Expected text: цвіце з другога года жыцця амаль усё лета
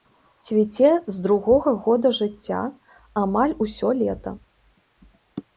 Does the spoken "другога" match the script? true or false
true